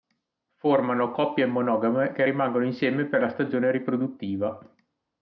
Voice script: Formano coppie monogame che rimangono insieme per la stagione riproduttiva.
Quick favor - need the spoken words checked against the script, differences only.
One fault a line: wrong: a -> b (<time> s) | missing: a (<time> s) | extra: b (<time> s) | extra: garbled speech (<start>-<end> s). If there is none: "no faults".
no faults